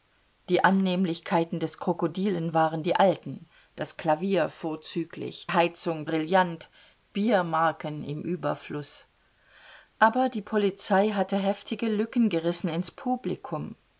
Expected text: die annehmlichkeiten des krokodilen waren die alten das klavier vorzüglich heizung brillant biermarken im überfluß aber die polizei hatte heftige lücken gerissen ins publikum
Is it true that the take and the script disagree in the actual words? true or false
false